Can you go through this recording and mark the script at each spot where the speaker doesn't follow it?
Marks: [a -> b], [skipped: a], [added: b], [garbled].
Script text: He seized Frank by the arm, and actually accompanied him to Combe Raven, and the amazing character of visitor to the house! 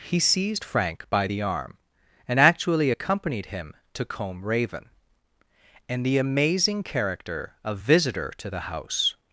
He seized Frank by the arm, and actually accompanied him to Combe Raven, and the amazing character of visitor to the house!